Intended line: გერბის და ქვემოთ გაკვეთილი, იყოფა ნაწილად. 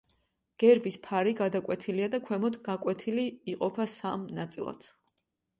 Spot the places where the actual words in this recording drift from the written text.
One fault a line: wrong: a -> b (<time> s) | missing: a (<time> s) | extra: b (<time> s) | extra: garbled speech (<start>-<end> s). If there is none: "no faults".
extra: ფარი გადაკვეთილია (1.1 s)
extra: სამ (4.0 s)